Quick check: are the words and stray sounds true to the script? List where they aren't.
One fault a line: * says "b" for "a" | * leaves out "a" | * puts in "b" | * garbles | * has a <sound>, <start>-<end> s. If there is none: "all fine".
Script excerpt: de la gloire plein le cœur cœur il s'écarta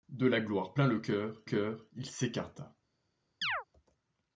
* has a chirp, 3.4-3.6 s